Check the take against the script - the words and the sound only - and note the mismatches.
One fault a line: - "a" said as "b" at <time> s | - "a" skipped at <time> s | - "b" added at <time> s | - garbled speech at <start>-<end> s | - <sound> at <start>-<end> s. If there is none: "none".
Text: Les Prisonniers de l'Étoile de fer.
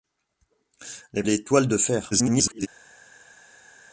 - "Prisonniers de" skipped at 1.2 s
- garbled speech at 2.1-2.7 s